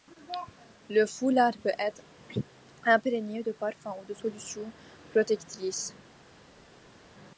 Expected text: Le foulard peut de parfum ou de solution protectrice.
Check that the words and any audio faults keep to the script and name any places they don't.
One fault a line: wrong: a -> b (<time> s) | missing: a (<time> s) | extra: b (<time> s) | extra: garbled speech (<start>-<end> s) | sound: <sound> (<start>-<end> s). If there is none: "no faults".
extra: être imprégné (1.8 s)